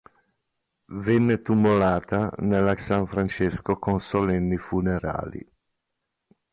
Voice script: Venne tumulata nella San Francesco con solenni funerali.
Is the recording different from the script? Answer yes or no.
no